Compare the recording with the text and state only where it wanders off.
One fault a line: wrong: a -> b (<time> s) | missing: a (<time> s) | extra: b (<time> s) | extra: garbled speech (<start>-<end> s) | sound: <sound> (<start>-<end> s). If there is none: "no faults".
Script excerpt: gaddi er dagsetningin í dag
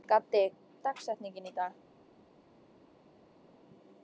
no faults